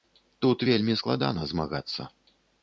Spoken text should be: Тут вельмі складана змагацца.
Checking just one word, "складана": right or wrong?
right